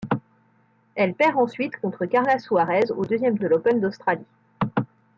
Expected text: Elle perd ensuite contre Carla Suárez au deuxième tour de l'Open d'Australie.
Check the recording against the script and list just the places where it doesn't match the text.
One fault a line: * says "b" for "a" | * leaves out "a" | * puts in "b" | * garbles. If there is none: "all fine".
* leaves out "tour"